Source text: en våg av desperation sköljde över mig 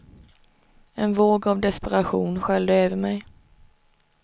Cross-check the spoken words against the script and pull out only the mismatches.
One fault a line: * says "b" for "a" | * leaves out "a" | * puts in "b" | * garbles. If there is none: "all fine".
all fine